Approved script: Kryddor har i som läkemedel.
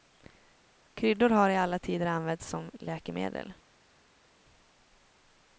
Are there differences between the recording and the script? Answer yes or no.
yes